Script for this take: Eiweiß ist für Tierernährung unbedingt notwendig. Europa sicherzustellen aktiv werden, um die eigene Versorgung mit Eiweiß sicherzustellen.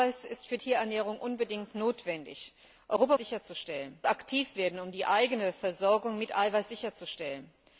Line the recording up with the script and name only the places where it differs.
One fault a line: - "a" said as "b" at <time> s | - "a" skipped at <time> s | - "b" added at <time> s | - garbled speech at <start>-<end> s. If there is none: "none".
none